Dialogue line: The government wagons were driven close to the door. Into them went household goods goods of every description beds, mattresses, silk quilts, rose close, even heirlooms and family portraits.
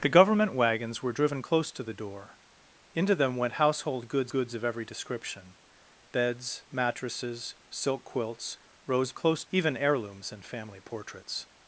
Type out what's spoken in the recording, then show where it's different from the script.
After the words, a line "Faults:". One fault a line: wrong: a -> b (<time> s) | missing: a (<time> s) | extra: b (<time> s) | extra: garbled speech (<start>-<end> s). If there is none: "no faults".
The government wagons were driven close to the door. Into them went household goods goods of every description beds, mattresses, silk quilts, rose close, even heirlooms and family portraits.
Faults:
no faults